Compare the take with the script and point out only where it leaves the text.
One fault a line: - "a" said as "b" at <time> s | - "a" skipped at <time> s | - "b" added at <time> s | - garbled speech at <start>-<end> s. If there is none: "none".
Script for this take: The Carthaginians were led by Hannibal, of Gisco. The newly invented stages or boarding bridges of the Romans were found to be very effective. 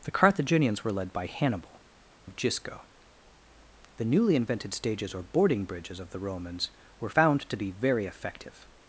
none